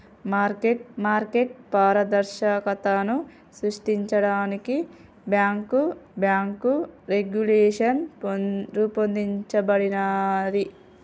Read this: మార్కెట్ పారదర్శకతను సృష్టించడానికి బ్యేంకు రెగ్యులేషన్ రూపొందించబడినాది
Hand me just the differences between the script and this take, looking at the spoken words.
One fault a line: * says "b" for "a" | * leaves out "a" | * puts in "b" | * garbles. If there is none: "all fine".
* puts in "మార్కెట్"
* puts in "బ్యేంకు"